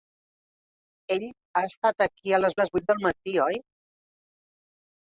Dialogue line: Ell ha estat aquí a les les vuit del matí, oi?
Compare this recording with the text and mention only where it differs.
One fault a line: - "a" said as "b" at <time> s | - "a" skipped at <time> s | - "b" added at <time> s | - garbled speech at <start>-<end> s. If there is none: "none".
none